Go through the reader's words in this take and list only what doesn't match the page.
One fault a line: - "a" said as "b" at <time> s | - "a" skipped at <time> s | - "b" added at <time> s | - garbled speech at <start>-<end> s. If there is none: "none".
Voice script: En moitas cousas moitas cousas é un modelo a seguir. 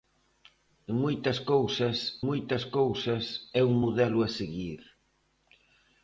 none